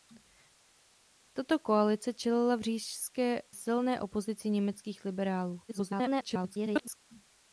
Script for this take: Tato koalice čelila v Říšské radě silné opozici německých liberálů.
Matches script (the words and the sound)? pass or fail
fail